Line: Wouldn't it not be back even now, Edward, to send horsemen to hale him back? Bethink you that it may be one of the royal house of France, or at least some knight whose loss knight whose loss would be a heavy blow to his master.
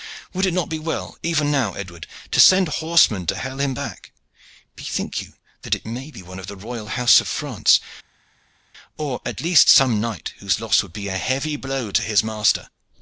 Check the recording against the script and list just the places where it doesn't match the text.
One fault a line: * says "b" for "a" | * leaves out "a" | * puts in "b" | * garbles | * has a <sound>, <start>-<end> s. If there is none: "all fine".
* says "Would" for "Wouldn't"
* says "well" for "back"
* leaves out "knight whose loss"